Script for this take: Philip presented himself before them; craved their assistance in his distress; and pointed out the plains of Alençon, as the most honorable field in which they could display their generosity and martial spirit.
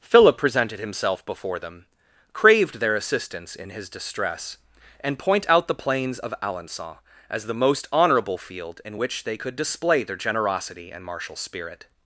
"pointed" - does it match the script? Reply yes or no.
no